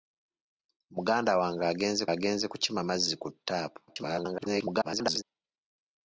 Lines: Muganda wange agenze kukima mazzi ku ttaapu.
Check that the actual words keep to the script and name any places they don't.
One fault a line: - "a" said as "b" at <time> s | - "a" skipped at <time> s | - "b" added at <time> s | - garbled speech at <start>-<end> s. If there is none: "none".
- "agenze" added at 2.1 s
- garbled speech at 3.9-5.2 s